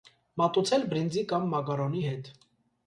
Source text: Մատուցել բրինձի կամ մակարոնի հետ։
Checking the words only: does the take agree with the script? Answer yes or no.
yes